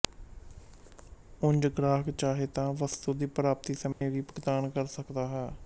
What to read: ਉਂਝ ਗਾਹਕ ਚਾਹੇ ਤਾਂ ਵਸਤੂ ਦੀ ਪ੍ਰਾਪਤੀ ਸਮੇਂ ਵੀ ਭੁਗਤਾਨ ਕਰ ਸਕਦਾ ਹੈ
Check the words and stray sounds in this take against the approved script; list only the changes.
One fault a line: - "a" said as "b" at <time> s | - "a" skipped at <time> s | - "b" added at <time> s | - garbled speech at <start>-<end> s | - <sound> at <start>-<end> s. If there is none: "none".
- dropout at 3.9-4.0 s